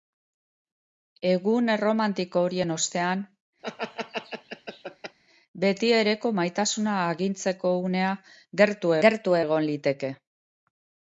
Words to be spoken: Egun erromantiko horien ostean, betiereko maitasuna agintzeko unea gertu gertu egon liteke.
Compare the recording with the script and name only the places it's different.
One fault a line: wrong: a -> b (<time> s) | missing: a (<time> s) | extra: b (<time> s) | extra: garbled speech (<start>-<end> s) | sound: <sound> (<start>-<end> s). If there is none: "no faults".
sound: laugh (3.6-5.2 s)